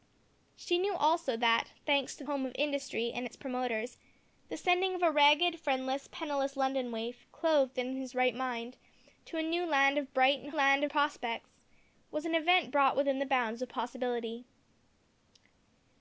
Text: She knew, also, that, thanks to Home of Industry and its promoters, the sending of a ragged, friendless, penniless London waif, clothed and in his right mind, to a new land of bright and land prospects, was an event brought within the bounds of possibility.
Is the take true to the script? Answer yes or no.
yes